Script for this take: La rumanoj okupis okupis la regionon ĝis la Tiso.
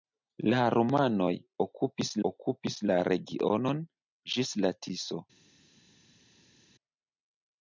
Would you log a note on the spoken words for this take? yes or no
no